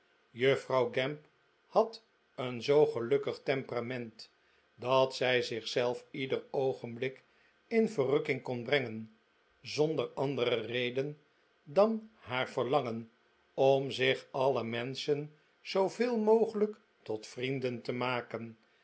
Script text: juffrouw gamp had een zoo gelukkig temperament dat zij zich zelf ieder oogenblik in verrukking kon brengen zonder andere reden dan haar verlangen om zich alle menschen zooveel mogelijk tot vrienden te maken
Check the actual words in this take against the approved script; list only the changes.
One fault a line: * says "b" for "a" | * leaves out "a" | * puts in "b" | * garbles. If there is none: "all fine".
all fine